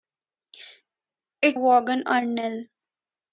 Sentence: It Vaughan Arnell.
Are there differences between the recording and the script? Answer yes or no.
no